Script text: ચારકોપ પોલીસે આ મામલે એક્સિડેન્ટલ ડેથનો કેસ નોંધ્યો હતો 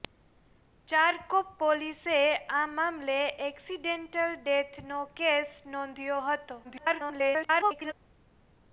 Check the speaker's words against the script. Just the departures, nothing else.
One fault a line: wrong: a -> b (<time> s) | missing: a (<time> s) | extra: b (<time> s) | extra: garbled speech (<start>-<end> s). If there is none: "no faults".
extra: garbled speech (6.6-7.9 s)